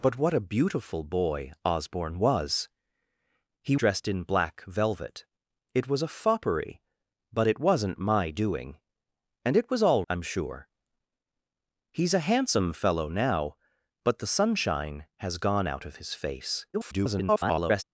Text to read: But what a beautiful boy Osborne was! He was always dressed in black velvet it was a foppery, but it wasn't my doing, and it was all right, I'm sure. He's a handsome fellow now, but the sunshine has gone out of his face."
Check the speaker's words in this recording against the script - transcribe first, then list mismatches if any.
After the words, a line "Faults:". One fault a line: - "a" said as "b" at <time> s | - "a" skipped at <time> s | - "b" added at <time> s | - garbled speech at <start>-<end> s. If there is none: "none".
But what a beautiful boy Osborne was! He dressed in black velvet it was a foppery, but it wasn't my doing, and it was all I'm sure. He's a handsome fellow now, but the sunshine has gone out of his face." [garbled]
Faults:
- "was always" skipped at 3.8 s
- "right" skipped at 10.1 s
- garbled speech at 16.7-17.8 s